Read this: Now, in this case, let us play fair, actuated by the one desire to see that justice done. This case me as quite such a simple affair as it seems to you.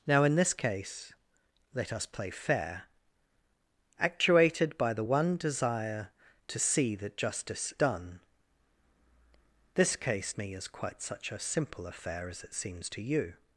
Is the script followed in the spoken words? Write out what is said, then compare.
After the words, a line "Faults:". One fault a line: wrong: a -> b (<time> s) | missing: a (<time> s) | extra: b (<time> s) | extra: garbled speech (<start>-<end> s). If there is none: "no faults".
Now, in this case, let us play fair, actuated by the one desire to see that justice done. This case me as quite such a simple affair as it seems to you.
Faults:
no faults